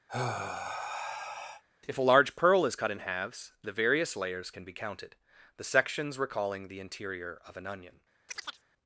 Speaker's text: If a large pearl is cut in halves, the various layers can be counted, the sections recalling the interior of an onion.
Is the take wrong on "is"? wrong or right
right